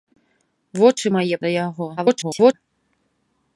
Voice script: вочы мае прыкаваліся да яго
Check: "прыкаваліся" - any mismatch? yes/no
yes